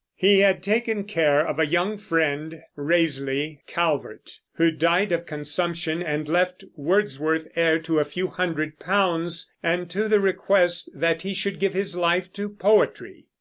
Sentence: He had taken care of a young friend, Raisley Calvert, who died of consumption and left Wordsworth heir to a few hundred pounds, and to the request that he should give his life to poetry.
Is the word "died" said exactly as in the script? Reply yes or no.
yes